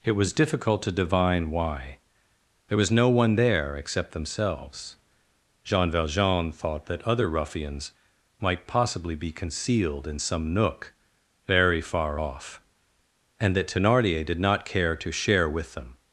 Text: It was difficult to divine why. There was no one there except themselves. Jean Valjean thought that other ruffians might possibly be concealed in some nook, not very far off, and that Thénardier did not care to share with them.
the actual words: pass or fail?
fail